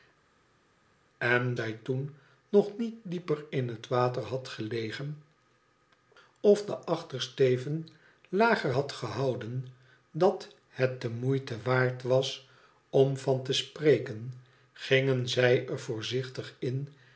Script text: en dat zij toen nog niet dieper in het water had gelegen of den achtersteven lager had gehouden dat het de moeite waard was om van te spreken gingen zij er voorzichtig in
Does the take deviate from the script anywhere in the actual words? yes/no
yes